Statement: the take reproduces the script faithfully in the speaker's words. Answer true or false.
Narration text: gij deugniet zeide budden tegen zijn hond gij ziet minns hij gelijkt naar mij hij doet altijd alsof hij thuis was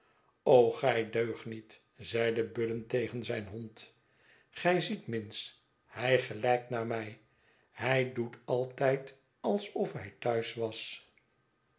true